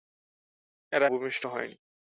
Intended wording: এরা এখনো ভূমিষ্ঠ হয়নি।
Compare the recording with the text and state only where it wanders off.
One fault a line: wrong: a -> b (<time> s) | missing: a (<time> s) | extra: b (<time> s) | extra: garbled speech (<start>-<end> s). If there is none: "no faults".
missing: এখনো (1.1 s)